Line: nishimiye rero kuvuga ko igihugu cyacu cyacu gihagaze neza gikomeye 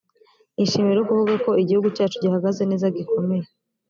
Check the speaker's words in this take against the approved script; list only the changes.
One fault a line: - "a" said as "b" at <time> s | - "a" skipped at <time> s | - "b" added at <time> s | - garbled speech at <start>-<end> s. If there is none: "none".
- "cyacu" skipped at 2.2 s